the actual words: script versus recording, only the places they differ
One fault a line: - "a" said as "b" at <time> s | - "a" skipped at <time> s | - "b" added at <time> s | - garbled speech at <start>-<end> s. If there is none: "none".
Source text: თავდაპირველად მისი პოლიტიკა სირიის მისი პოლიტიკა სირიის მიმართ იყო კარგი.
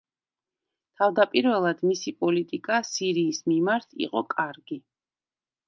- "მისი პოლიტიკა სირიის" skipped at 3.5 s